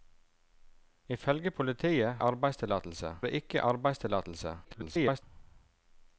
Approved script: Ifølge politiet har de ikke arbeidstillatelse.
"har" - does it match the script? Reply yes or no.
no